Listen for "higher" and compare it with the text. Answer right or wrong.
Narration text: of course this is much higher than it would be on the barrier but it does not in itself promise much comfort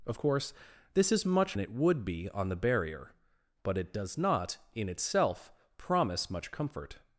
wrong